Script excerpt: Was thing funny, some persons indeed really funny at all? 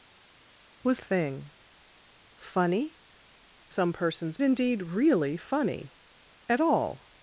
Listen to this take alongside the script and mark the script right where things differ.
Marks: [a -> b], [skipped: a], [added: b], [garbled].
Was thing funny, some persons indeed really funny at all?